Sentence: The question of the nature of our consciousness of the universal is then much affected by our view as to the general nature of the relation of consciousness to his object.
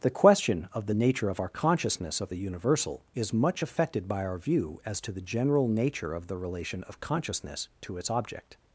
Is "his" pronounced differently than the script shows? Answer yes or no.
yes